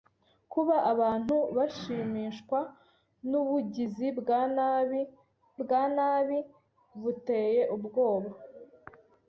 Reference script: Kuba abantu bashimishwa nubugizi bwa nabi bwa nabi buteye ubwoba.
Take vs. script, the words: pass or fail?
pass